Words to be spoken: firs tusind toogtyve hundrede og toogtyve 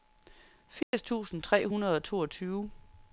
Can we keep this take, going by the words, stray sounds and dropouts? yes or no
no